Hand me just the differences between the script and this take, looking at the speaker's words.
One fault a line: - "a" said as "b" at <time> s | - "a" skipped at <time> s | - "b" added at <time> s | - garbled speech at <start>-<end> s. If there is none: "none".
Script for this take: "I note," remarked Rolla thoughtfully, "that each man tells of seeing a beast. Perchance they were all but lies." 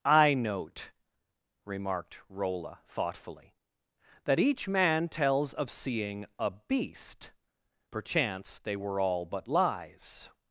none